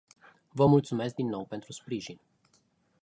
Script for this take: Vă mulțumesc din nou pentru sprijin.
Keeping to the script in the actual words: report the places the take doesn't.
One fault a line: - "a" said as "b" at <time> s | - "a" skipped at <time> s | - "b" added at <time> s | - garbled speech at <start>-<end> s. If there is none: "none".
none